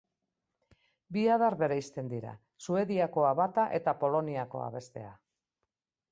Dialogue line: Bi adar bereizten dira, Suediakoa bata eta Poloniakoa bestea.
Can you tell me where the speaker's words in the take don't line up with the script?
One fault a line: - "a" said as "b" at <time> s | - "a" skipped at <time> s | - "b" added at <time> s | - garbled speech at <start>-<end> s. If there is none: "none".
none